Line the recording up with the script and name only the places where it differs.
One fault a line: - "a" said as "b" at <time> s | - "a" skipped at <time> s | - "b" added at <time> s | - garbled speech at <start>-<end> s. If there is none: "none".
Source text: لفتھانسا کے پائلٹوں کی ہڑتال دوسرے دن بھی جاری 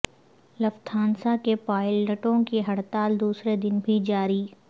none